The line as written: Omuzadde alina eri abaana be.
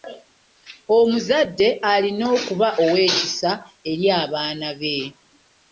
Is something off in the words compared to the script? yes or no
yes